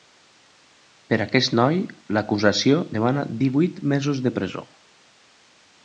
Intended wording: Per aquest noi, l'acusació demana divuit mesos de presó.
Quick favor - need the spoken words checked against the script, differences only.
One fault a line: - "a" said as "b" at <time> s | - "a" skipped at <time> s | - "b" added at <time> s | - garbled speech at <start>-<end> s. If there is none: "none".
none